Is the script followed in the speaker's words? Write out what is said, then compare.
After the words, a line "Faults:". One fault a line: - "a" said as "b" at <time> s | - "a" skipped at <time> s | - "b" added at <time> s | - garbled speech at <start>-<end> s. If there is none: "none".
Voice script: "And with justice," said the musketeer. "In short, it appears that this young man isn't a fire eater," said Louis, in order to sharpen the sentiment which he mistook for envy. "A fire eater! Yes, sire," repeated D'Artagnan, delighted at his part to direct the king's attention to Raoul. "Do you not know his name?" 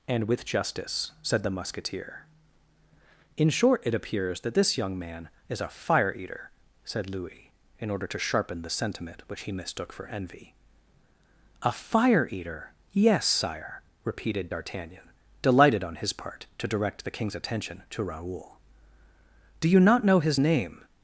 "And with justice," said the musketeer. "In short, it appears that this young man is a fire eater," said Louis, in order to sharpen the sentiment which he mistook for envy. "A fire eater! Yes, sire," repeated D'Artagnan, delighted on his part to direct the king's attention to Raoul. "Do you not know his name?"
Faults:
- "isn't" said as "is" at 5.5 s
- "at" said as "on" at 15.8 s